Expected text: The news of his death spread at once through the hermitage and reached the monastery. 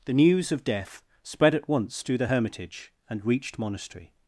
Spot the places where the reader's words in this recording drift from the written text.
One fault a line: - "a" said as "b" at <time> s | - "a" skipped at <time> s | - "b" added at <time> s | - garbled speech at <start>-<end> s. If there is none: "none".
- "his" skipped at 0.6 s
- "the" skipped at 3.6 s